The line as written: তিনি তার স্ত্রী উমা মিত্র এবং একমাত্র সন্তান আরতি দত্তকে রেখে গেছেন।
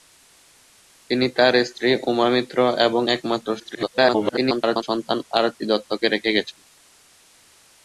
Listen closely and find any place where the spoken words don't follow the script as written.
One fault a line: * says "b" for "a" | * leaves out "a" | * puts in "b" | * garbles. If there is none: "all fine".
* garbles